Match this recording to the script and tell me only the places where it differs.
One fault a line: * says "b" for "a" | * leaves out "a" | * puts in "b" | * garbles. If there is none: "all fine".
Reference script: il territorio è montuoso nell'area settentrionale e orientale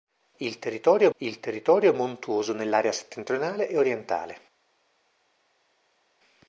* puts in "il territorio"